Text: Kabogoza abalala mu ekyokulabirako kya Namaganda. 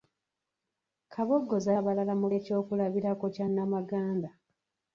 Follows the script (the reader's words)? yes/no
yes